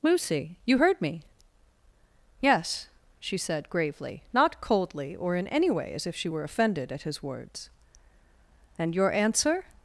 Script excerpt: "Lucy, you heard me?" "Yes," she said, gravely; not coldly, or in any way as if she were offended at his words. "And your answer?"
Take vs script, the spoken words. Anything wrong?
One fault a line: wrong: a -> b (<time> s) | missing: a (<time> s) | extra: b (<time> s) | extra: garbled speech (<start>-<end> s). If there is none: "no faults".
no faults